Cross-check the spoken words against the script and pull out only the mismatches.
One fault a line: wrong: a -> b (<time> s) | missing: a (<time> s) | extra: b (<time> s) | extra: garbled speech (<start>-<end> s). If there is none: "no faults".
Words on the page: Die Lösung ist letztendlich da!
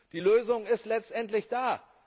no faults